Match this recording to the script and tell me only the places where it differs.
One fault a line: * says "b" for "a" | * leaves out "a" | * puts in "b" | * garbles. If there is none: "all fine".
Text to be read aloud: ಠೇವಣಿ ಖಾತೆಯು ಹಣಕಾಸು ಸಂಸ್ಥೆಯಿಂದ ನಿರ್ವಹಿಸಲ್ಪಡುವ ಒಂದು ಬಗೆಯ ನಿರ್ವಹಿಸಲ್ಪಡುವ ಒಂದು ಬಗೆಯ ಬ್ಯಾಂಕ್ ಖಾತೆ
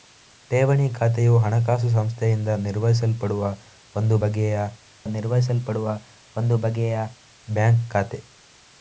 all fine